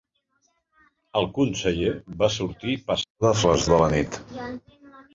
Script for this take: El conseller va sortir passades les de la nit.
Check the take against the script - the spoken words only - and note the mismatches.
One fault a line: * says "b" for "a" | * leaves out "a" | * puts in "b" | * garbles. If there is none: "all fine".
all fine